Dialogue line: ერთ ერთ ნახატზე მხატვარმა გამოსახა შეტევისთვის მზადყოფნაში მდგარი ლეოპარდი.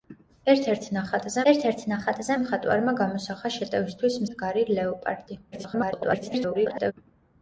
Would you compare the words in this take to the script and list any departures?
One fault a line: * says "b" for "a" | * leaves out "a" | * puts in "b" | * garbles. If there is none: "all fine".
* puts in "ერთ ერთ ნახატზე"
* leaves out "მზადყოფნაში"
* garbles